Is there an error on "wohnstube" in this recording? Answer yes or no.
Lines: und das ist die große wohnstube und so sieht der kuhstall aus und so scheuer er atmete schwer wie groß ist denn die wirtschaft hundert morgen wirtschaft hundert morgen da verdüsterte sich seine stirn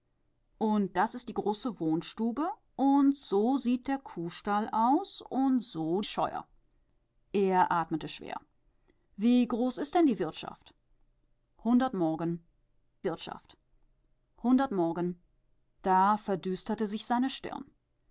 no